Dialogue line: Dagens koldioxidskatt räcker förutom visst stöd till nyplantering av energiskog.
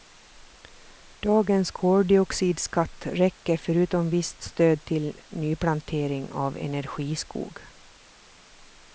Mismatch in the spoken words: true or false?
false